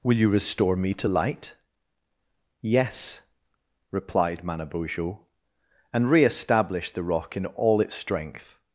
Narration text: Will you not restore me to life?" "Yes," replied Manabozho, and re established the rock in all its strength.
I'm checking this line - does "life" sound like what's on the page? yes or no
no